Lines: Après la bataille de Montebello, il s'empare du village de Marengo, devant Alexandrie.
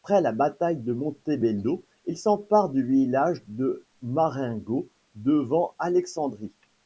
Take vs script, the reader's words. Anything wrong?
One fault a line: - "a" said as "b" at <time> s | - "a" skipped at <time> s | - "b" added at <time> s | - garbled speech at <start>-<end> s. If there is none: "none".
none